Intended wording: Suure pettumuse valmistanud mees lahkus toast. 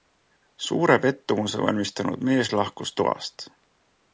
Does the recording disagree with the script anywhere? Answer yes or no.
no